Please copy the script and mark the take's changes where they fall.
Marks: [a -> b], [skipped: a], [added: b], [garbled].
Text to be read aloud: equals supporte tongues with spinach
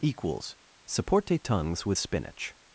equals supporte tongues with spinach